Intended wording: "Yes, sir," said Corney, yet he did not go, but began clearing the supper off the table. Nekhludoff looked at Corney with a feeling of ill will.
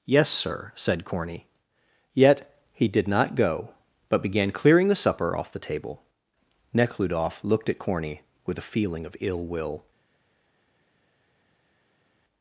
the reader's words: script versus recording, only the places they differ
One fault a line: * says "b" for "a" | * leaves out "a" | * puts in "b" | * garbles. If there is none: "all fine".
all fine